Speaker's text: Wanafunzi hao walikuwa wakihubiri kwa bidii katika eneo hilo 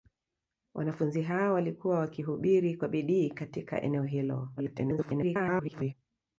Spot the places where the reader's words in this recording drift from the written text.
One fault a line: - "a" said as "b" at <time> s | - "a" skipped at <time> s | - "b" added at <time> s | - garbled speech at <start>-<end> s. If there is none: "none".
- garbled speech at 4.6-5.9 s